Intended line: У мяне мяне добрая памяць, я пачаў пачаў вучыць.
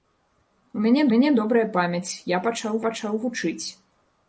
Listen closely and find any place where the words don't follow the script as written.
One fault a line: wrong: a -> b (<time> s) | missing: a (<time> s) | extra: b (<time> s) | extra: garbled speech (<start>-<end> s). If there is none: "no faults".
no faults